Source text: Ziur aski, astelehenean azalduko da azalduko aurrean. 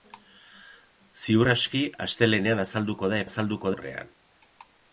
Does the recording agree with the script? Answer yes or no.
yes